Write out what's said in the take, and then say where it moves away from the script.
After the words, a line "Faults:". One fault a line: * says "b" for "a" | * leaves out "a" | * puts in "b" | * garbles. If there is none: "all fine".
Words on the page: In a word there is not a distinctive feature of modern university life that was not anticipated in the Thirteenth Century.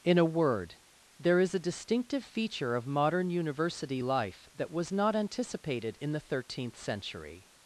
In a word there is a distinctive feature of modern university life that was not anticipated in the Thirteenth Century.
Faults:
* leaves out "not"